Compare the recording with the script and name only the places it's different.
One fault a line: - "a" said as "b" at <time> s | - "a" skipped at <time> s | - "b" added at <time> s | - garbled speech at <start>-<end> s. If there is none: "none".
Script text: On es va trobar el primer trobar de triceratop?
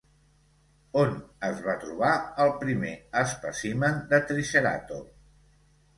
- "trobar" said as "espècimen" at 3.2 s